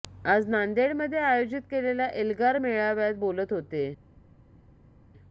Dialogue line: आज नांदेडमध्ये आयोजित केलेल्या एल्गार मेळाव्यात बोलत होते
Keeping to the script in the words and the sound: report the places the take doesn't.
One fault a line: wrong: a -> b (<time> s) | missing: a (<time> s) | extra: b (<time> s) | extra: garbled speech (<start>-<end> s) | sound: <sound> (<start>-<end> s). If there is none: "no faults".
no faults